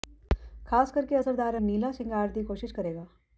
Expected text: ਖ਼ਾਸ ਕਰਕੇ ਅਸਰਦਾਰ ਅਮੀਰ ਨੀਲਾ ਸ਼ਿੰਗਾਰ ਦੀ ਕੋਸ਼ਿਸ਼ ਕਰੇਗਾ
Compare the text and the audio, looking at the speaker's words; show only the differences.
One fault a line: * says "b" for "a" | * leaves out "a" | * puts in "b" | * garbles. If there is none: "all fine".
* leaves out "ਅਮੀਰ"